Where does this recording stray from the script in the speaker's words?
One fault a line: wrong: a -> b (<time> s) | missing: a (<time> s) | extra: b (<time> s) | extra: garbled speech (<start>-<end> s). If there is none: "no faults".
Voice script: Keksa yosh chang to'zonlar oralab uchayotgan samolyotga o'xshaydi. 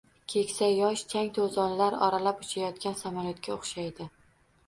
no faults